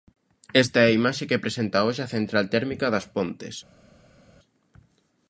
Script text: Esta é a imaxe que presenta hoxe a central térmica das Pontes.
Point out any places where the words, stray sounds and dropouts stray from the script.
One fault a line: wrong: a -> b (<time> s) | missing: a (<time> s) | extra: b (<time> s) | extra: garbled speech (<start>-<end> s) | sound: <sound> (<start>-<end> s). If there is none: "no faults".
no faults